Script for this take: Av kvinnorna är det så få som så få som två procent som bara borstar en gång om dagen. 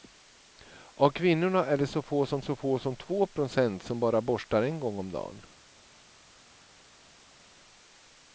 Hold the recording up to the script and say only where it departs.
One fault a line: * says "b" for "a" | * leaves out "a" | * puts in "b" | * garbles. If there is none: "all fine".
all fine